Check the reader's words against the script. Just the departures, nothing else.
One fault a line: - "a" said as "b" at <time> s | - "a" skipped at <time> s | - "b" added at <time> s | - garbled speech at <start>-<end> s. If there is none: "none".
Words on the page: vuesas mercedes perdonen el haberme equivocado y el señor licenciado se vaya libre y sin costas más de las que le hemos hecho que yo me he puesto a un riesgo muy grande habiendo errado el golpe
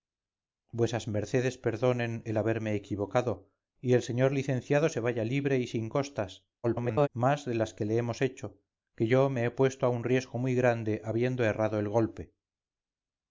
- garbled speech at 6.6-7.1 s